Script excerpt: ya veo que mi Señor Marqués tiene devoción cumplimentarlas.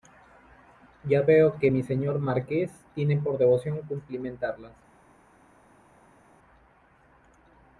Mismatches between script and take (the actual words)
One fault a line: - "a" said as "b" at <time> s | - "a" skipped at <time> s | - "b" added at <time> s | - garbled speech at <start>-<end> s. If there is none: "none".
- "por" added at 3.2 s